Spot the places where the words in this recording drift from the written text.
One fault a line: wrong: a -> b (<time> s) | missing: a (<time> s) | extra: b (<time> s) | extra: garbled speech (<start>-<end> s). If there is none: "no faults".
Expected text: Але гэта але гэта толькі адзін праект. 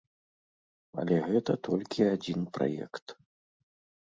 missing: але гэта (1.6 s)